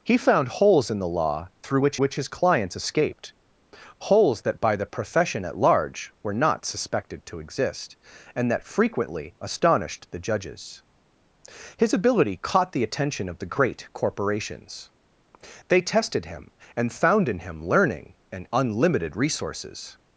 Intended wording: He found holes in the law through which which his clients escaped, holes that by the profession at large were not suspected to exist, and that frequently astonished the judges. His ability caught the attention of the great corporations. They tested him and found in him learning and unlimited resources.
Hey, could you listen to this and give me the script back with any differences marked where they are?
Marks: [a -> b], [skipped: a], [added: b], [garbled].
He found holes in the law through which which his clients escaped, holes that by the profession at large were not suspected to exist, and that frequently astonished the judges. His ability caught the attention of the great corporations. They tested him and found in him learning and unlimited resources.